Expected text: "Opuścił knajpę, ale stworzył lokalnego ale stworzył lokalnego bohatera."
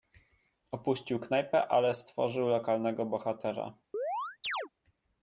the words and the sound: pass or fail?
fail